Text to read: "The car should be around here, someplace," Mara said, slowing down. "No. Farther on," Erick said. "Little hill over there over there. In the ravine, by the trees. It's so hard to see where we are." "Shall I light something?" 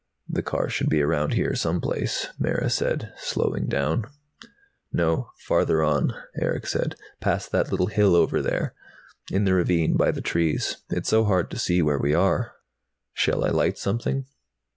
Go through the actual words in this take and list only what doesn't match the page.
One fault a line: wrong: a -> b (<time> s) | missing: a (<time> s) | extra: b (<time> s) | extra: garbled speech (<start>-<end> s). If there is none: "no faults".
extra: Past that (7.2 s)
missing: over there (8.7 s)